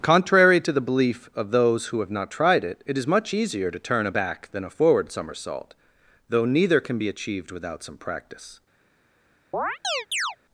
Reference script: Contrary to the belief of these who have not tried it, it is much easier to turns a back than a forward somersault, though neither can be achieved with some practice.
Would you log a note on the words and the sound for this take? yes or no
yes